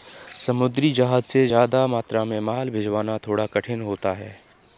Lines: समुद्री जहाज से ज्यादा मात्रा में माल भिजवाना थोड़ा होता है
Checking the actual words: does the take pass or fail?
fail